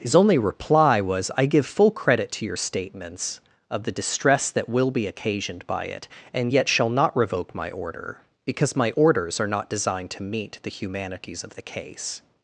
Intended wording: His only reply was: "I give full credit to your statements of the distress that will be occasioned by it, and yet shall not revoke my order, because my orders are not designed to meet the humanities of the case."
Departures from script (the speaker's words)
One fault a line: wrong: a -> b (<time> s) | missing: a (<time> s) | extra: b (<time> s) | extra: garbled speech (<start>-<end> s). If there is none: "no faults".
no faults